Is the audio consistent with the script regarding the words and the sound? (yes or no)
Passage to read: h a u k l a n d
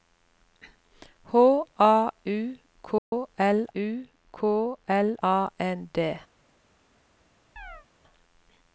no